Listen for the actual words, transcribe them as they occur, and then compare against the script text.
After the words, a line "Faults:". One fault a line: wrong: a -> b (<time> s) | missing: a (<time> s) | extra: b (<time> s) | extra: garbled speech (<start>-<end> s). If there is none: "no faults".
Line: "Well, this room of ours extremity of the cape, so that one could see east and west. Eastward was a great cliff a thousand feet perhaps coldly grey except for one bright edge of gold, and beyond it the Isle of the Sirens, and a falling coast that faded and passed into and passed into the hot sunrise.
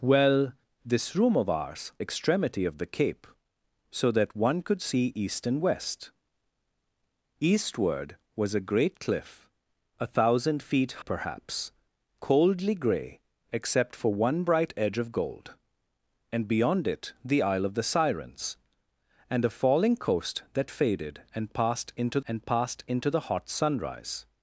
"Well, this room of ours extremity of the cape, so that one could see east and west. Eastward was a great cliff a thousand feet perhaps coldly grey except for one bright edge of gold, and beyond it the Isle of the Sirens, and a falling coast that faded and passed into and passed into the hot sunrise.
Faults:
no faults